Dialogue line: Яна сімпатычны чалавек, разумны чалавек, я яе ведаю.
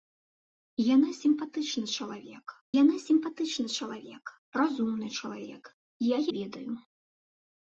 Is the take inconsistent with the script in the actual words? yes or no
yes